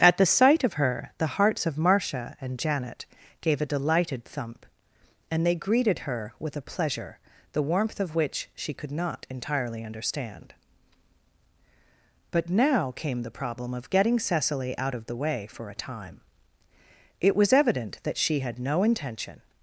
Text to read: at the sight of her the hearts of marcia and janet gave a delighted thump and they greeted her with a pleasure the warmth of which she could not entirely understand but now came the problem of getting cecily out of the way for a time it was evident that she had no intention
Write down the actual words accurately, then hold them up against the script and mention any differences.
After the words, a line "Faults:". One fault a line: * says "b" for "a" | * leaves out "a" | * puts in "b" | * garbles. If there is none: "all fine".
at the sight of her the hearts of marcia and janet gave a delighted thump and they greeted her with a pleasure the warmth of which she could not entirely understand but now came the problem of getting cecily out of the way for a time it was evident that she had no intention
Faults:
all fine